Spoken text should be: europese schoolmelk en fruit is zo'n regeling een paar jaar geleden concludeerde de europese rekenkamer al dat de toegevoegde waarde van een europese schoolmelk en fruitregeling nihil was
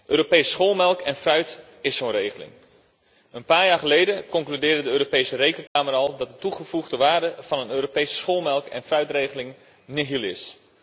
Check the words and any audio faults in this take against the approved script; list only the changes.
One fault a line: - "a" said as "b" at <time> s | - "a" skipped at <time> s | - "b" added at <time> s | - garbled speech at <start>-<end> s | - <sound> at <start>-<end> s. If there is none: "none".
- dropout at 5.7-5.8 s
- "was" said as "is" at 10.2 s